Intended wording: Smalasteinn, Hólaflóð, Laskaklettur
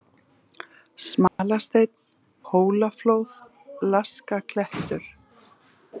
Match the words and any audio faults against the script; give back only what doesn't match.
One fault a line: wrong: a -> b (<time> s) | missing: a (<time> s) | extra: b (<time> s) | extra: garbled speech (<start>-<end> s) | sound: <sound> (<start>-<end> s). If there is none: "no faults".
sound: dropout (1.3-1.4 s)